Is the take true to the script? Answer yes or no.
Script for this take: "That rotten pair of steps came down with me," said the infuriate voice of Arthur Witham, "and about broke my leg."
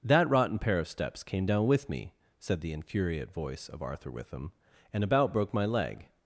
yes